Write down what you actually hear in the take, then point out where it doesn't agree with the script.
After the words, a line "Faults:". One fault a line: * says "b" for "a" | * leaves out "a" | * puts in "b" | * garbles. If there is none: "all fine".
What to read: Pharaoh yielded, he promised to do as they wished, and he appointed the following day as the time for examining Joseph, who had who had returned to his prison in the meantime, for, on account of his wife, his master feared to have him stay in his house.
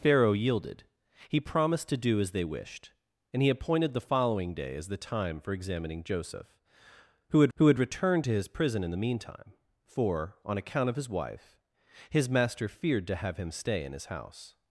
Pharaoh yielded, he promised to do as they wished, and he appointed the following day as the time for examining Joseph, who had who had returned to his prison in the meantime, for, on account of his wife, his master feared to have him stay in his house.
Faults:
all fine